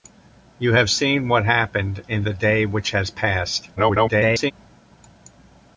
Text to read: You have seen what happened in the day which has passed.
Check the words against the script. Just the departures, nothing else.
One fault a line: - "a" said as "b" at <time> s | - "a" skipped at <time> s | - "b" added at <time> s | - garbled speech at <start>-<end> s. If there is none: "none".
- garbled speech at 3.8-4.5 s